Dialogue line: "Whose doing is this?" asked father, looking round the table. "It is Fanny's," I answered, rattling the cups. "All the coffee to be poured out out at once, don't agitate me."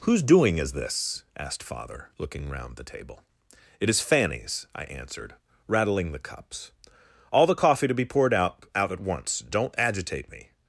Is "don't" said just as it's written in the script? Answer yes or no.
yes